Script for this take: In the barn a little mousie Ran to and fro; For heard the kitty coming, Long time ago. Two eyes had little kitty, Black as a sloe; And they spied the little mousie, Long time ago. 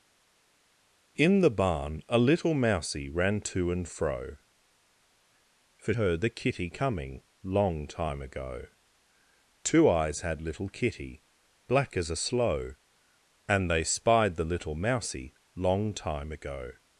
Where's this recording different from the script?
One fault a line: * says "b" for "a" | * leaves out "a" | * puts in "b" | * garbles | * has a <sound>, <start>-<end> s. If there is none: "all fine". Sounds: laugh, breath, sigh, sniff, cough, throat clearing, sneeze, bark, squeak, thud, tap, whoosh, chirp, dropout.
all fine